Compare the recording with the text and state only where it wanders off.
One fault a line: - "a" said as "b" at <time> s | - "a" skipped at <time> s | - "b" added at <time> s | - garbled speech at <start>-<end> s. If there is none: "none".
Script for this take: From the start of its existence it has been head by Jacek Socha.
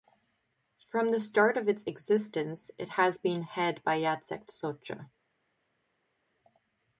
none